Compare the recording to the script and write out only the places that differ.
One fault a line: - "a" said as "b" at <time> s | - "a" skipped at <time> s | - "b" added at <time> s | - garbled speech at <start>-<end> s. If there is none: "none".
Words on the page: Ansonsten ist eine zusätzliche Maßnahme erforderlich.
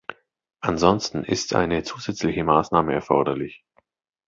none